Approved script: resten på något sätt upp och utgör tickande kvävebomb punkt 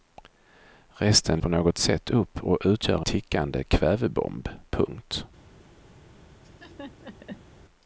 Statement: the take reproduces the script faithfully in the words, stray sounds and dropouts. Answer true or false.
false